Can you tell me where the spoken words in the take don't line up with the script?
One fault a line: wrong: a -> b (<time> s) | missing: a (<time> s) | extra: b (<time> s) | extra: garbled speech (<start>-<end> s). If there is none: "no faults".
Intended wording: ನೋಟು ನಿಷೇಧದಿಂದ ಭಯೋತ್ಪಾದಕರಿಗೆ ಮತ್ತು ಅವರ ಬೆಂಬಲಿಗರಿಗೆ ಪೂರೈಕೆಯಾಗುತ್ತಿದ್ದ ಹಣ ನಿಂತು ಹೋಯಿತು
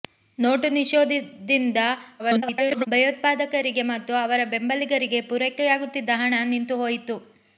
extra: garbled speech (2.2-2.9 s)